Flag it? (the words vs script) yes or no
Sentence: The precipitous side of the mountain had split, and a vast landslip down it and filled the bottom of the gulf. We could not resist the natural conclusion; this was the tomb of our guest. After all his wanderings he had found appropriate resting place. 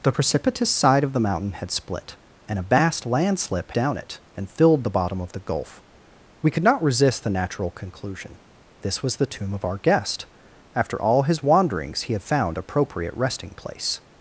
no